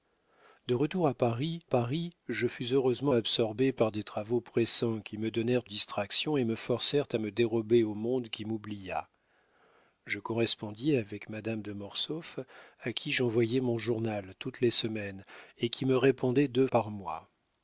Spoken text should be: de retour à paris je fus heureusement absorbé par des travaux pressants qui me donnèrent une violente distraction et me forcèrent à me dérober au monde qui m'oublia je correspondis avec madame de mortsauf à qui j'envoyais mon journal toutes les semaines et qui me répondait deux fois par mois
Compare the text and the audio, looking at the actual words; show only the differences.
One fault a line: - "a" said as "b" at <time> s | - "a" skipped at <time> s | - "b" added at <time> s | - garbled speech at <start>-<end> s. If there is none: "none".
- "paris" added at 1.6 s
- "une violente" skipped at 5.6 s
- "fois" skipped at 16.7 s